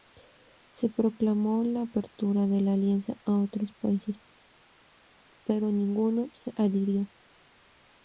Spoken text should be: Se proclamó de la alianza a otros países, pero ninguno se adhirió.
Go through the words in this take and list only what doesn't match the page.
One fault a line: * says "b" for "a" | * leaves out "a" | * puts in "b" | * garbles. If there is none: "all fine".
* puts in "la apertura"